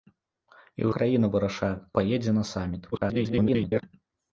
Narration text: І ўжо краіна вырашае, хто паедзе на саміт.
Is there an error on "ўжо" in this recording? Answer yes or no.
yes